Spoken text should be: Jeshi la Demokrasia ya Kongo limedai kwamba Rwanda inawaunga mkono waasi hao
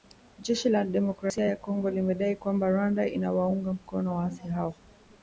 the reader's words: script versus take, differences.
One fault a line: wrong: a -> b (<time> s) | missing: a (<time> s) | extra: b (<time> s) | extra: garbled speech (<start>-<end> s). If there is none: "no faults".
no faults